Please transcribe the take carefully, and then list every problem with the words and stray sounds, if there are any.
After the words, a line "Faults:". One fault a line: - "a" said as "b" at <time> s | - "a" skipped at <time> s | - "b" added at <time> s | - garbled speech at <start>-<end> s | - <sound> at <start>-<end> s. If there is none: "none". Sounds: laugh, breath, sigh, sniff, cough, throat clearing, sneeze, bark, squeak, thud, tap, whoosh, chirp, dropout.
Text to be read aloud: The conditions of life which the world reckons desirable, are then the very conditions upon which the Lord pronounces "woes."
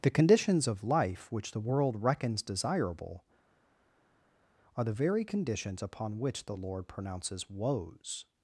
The conditions of life which the world reckons desirable, are the very conditions upon which the Lord pronounces "woes."
Faults:
- "then" skipped at 4.8 s